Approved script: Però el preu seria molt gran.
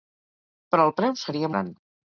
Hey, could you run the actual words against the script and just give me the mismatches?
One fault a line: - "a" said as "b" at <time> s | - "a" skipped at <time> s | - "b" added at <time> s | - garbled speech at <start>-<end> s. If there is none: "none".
- "molt" skipped at 1.5 s